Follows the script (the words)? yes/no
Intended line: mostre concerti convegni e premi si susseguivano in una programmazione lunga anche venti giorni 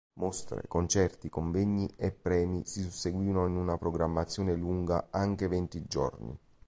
yes